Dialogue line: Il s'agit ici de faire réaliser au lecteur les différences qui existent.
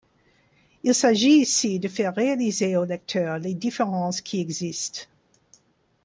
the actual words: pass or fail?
pass